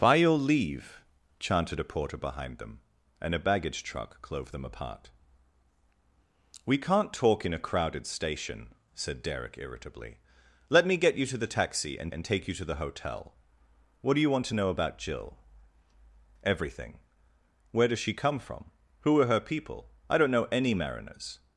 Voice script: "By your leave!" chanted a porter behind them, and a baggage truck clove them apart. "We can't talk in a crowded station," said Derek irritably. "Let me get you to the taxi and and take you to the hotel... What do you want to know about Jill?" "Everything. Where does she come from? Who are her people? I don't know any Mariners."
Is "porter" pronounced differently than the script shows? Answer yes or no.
no